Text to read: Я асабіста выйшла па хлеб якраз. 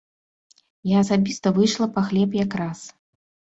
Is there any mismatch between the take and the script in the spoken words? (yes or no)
no